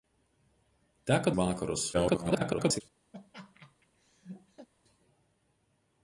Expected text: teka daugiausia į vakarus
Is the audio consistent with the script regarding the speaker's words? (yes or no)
no